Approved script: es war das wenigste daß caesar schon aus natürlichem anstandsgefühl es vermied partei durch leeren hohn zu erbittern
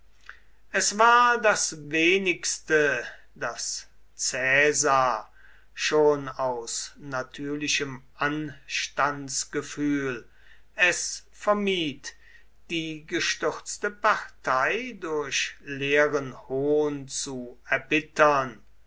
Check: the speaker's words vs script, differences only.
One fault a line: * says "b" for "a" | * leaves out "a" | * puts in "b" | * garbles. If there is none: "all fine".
* puts in "die gestürzte"